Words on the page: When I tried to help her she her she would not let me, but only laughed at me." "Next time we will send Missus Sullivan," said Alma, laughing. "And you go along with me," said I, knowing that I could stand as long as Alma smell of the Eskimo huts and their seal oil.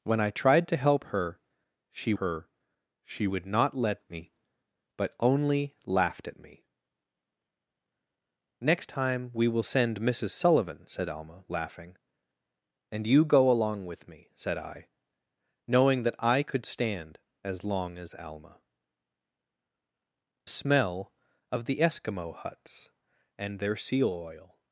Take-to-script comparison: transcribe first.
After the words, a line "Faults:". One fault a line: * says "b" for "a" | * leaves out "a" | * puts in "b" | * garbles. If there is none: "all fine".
When I tried to help her she her she would not let me, but only laughed at me." "Next time we will send Missus Sullivan," said Alma, laughing. "And you go along with me," said I, knowing that I could stand as long as Alma smell of the Eskimo huts and their seal oil.
Faults:
all fine